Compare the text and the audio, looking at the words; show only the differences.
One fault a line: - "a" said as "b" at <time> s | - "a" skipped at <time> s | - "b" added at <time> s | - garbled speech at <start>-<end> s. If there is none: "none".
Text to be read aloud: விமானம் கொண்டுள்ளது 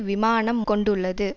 none